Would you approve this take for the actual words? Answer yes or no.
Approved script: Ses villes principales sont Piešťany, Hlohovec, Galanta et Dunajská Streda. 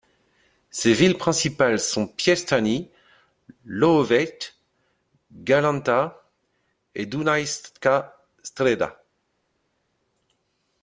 yes